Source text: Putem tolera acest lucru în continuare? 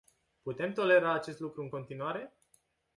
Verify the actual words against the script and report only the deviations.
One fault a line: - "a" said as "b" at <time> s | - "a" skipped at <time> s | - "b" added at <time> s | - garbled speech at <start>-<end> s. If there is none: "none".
none